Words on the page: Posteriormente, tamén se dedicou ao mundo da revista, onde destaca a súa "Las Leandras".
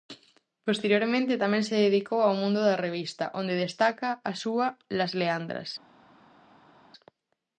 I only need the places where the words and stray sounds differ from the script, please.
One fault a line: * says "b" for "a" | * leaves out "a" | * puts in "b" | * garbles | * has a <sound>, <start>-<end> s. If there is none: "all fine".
all fine